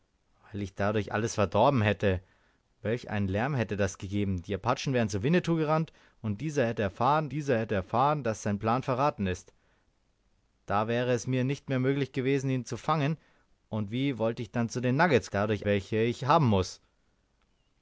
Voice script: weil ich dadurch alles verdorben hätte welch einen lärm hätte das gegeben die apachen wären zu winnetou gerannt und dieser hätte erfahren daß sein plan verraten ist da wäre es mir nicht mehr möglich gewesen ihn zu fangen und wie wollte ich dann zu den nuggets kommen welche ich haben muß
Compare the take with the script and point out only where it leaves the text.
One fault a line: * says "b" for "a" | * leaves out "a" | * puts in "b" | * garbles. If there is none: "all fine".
* puts in "dieser hätte erfahren"
* says "dadurch" for "kommen"